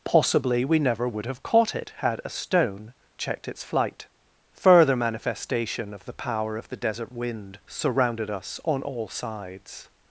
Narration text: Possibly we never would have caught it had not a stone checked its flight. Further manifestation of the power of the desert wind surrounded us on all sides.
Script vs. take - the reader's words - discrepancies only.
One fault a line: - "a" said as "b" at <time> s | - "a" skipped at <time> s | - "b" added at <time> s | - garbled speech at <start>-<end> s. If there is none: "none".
- "not" skipped at 2.2 s